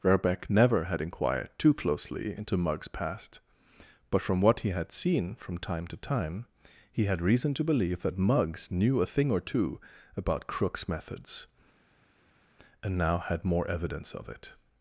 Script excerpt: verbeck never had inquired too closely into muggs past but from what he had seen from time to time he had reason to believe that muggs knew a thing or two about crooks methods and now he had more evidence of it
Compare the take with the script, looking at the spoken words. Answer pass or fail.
fail